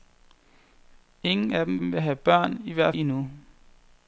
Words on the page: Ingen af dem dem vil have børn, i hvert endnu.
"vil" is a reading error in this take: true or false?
false